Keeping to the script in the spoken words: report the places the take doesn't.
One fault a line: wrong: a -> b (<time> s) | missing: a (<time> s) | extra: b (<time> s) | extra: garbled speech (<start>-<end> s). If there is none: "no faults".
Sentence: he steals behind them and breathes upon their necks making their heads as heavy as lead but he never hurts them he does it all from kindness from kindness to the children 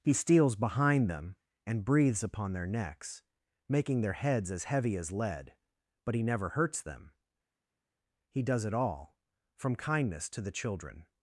missing: from kindness (10.3 s)